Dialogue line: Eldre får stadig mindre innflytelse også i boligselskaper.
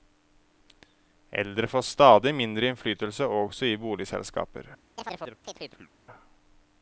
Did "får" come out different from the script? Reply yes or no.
no